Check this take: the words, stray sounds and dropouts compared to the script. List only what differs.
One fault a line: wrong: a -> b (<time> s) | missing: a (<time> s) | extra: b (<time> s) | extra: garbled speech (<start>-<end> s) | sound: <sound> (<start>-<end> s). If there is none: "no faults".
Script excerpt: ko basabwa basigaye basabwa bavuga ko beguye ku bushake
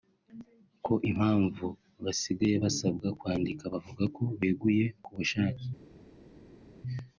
wrong: basabwa -> impamvu (1.1 s)
extra: kwandika (3.2 s)